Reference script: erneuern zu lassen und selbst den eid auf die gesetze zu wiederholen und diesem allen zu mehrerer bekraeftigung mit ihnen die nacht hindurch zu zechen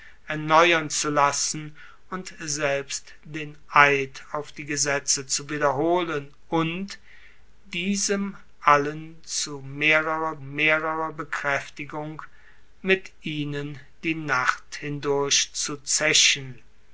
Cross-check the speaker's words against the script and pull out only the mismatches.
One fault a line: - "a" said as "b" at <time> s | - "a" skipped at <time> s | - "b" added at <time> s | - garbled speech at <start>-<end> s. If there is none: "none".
- "mehrerer" added at 10.4 s